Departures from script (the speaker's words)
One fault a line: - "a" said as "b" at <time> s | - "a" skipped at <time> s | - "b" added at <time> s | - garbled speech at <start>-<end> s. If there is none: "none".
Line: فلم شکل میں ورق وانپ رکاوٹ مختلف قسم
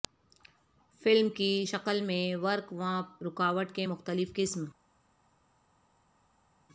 - "کی" added at 1.3 s
- "کے" added at 3.7 s